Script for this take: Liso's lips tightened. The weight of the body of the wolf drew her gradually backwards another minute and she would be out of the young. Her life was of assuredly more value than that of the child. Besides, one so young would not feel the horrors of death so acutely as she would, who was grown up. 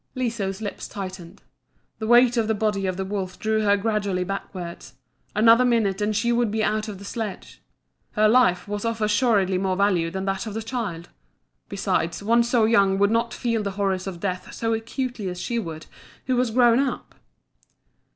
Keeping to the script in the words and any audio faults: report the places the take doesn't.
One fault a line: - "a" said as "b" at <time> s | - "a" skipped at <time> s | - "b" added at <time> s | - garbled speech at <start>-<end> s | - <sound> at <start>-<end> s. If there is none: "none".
- "young" said as "sledge" at 7.0 s